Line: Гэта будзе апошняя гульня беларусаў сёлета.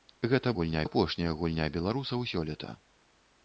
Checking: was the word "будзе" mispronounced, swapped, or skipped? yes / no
yes